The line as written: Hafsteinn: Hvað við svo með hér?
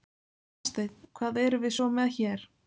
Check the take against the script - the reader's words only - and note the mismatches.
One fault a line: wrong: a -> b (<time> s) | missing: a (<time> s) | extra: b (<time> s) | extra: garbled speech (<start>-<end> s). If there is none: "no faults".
extra: erum (1.4 s)